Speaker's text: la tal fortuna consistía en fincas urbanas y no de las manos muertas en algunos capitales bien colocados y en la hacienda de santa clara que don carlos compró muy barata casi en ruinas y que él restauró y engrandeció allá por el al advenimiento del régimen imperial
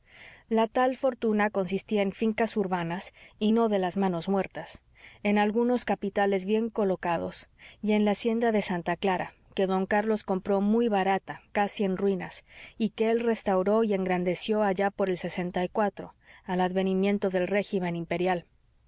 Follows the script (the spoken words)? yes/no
yes